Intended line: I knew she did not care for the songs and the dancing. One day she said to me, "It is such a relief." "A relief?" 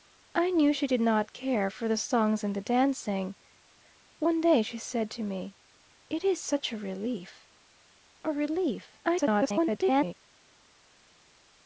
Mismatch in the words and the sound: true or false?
true